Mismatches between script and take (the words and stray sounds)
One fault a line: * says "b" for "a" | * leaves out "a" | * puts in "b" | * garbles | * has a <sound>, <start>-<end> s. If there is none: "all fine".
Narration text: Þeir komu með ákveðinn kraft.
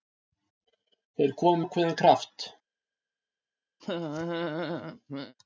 * leaves out "með"
* has a laugh, 3.8-5.3 s